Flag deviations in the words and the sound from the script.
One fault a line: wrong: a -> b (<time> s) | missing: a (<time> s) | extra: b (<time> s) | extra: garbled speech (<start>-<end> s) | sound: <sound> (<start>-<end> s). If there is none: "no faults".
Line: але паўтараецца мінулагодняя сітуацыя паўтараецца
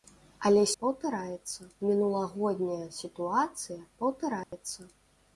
sound: dropout (4.4-4.5 s)